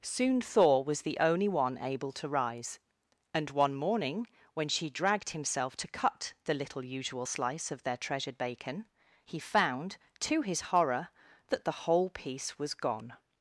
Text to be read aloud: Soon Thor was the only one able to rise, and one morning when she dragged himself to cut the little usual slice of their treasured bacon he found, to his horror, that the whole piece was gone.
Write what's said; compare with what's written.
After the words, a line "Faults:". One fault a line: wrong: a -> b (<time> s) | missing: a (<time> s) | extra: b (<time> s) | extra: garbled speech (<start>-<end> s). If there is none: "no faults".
Soon Thor was the only one able to rise, and one morning when she dragged himself to cut the little usual slice of their treasured bacon he found, to his horror, that the whole piece was gone.
Faults:
no faults